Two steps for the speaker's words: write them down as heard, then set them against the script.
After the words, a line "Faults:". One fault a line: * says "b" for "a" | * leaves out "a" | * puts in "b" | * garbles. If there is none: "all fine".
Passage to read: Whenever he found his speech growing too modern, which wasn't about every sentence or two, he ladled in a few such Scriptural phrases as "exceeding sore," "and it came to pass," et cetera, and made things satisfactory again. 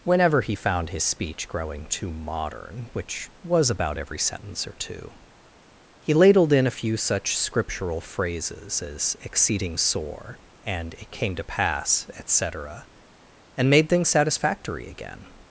Whenever he found his speech growing too modern, which was about every sentence or two, he ladled in a few such Scriptural phrases as "exceeding sore," "and it came to pass," et cetera, and made things satisfactory again.
Faults:
* says "was" for "wasn't"